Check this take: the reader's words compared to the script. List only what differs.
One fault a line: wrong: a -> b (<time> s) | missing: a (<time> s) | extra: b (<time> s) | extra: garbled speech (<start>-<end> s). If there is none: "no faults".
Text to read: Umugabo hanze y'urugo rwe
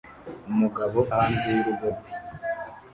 no faults